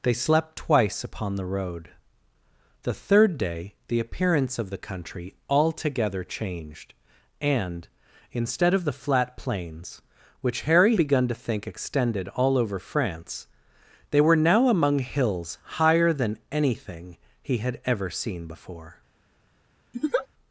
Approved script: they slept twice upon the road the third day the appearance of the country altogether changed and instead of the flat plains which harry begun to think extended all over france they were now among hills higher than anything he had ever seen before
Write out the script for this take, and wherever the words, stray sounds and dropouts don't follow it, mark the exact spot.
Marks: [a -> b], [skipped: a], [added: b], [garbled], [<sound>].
they slept twice upon the road the third day the appearance of the country altogether changed and instead of the flat plains which harry begun to think extended all over france they were now among hills higher than anything he had ever seen before [laugh]